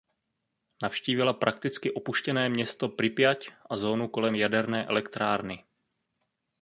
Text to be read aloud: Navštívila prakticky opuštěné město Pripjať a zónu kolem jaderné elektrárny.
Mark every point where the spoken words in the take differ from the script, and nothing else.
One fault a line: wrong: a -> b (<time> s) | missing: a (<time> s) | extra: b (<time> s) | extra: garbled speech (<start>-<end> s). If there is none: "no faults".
no faults